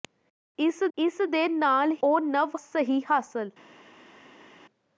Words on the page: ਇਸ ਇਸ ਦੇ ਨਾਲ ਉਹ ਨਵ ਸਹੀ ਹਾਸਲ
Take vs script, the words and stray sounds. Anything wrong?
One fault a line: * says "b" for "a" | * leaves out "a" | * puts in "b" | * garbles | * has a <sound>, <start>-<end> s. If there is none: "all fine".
all fine